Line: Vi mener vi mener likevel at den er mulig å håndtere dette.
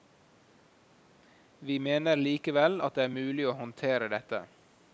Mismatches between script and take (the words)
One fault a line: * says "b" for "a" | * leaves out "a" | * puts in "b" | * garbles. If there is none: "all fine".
* leaves out "vi mener"
* says "det" for "den"